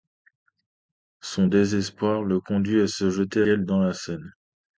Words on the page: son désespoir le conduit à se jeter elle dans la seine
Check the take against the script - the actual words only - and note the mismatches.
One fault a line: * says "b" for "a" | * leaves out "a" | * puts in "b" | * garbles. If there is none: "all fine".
all fine